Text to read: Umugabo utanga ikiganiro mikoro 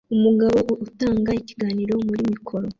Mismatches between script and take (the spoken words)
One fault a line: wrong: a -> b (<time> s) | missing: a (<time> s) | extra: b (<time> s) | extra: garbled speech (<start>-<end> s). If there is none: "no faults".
extra: muri (2.1 s)